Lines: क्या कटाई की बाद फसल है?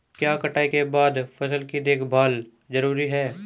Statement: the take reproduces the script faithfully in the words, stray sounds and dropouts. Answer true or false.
false